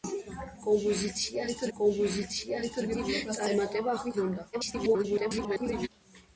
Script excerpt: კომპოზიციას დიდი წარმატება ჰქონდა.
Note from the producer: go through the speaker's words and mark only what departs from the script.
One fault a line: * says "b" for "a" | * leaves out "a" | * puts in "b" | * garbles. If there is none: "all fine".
* puts in "კომპოზიციას"
* garbles